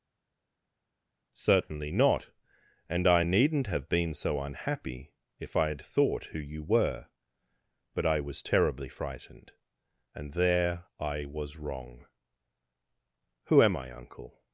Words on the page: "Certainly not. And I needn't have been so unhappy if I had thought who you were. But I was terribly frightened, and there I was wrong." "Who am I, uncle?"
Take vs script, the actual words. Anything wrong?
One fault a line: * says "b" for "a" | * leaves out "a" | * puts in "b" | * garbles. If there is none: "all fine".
all fine